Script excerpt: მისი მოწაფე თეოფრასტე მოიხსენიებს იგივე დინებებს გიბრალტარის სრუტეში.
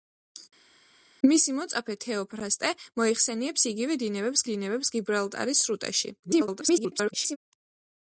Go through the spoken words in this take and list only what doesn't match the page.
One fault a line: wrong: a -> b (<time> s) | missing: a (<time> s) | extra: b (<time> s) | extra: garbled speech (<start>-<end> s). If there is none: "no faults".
extra: დინებებს (4.5 s)
extra: garbled speech (6.2-7.4 s)